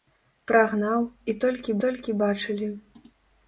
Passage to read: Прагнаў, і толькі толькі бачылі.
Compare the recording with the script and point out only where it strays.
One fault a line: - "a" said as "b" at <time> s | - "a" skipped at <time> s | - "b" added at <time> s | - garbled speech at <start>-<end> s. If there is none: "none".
none